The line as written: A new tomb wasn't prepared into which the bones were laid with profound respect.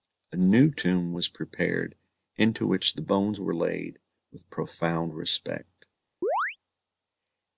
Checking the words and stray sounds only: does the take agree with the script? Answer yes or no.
no